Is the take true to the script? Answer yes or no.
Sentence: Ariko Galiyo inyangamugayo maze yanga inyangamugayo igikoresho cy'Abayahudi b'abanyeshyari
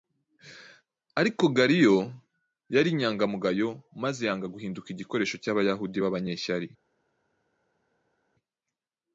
no